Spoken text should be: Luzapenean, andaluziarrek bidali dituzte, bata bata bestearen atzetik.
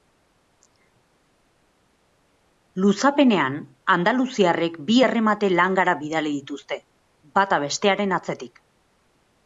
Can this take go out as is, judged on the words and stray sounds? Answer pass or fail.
fail